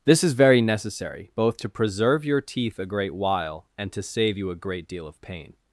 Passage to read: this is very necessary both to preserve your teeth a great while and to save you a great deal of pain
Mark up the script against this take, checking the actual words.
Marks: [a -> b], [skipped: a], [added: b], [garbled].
this is very necessary both to preserve your teeth a great while and to save you a great deal of pain